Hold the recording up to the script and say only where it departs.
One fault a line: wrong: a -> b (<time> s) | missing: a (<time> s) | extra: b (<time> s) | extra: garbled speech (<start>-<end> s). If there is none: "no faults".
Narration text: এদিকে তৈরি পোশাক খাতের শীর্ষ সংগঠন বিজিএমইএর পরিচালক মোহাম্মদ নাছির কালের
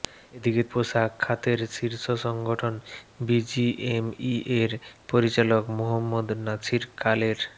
missing: তৈরি (0.6 s)